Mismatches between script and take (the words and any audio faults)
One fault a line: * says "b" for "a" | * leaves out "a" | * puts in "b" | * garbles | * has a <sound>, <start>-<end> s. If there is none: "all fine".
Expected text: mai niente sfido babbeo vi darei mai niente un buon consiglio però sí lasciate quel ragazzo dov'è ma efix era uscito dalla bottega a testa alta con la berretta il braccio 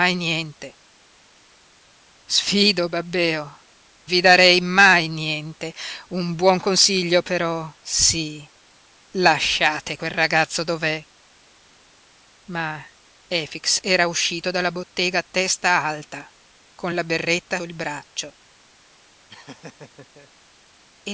* has a laugh, 19.3-20.3 s